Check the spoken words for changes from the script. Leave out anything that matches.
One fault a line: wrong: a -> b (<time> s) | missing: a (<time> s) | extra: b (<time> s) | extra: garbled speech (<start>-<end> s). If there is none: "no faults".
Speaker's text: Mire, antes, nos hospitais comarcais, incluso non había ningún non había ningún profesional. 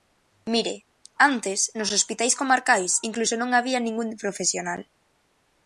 missing: non había ningún (4.1 s)